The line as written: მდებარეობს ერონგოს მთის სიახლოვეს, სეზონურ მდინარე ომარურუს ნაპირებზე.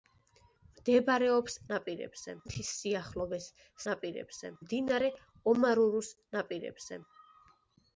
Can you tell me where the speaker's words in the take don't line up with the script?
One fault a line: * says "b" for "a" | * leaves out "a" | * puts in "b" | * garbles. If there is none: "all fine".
* says "ნაპირებზე" for "ერონგოს"
* says "ნაპირებზე" for "სეზონურ"